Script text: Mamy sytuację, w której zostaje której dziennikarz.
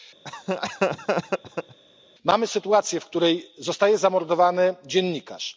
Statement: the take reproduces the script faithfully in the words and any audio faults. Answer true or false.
false